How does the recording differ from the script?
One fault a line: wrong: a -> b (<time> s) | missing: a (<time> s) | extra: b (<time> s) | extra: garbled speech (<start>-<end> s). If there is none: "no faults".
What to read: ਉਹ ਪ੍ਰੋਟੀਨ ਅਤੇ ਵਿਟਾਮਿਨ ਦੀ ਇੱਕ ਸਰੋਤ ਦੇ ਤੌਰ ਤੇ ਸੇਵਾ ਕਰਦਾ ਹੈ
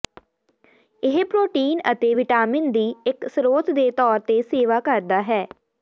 wrong: ਉਹ -> ਇਹ (1.0 s)